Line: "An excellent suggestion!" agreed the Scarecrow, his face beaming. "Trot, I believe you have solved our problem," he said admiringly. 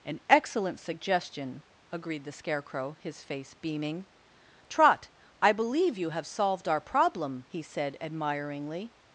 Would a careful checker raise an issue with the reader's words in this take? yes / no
no